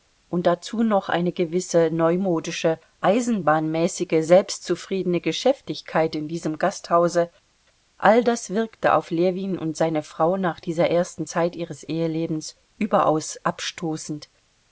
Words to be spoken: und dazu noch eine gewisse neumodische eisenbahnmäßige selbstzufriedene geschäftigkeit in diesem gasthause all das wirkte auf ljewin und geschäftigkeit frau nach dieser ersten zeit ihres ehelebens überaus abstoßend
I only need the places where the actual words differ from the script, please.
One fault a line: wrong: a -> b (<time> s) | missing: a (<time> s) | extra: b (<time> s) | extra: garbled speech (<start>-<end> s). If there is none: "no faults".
wrong: geschäftigkeit -> seine (9.7 s)